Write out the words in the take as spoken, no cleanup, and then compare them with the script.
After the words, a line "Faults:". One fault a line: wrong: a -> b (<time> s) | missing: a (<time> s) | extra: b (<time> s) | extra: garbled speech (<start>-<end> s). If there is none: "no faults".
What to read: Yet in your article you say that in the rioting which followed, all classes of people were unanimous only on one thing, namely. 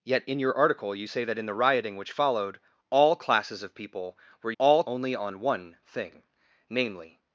Yet in your article you say that in the rioting which followed, all classes of people were all only on one thing, namely.
Faults:
wrong: unanimous -> all (4.6 s)